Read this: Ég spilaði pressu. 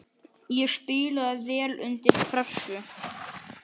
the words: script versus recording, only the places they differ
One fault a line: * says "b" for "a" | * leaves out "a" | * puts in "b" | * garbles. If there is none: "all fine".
* puts in "vel undir"